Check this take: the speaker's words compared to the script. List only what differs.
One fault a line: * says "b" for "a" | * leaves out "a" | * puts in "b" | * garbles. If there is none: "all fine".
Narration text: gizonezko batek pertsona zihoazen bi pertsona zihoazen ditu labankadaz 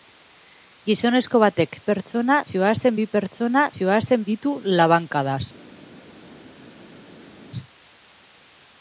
all fine